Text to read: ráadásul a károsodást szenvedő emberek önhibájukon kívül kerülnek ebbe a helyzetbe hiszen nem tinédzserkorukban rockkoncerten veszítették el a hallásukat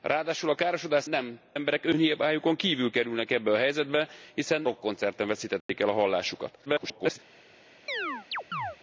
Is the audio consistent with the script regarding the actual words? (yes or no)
no